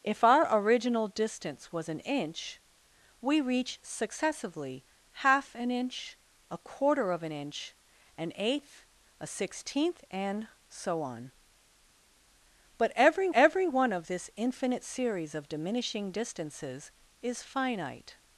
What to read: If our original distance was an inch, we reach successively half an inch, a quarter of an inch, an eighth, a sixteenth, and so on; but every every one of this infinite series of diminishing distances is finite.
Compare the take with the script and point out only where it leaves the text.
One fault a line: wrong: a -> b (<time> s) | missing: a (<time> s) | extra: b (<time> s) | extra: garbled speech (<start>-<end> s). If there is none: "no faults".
no faults